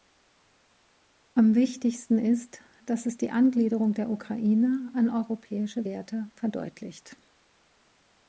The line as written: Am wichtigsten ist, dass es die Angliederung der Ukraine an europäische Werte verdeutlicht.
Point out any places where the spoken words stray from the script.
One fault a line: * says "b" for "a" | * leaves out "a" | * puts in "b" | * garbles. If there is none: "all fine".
all fine